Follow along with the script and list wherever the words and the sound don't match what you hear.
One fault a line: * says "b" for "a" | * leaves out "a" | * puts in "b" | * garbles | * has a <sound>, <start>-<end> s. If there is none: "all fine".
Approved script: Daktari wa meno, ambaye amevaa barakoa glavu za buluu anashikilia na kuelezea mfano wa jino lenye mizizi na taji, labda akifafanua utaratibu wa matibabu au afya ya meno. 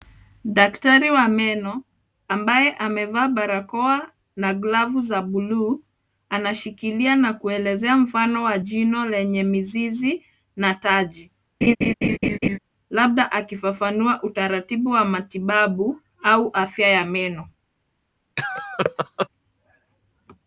* puts in "na"
* has a laugh, 11.6-12.6 s
* has a laugh, 18.4-19.3 s